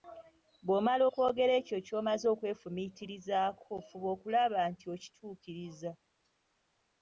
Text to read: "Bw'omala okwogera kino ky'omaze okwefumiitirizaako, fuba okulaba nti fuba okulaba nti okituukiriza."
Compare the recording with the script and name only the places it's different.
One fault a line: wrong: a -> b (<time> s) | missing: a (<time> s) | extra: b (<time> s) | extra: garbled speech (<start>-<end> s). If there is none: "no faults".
wrong: kino -> ekyo (1.6 s)
missing: fuba okulaba nti (4.9 s)